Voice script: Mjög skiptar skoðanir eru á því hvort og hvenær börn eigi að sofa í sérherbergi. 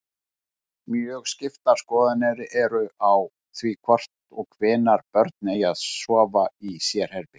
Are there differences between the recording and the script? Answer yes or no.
no